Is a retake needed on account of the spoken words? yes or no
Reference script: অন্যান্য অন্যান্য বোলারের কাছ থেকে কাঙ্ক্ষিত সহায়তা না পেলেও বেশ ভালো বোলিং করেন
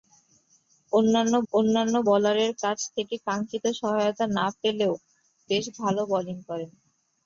no